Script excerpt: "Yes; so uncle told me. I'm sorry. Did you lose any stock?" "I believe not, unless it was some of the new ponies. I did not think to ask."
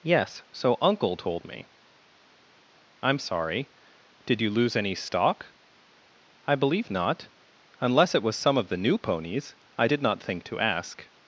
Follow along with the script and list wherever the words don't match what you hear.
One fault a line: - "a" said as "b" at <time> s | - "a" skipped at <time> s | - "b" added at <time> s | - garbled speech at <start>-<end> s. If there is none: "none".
none